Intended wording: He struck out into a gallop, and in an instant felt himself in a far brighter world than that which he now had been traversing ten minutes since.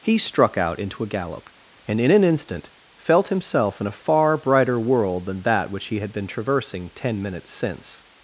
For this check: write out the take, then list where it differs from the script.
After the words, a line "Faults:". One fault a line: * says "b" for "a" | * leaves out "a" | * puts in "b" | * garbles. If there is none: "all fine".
He struck out into a gallop, and in an instant felt himself in a far brighter world than that which he had been traversing ten minutes since.
Faults:
* leaves out "now"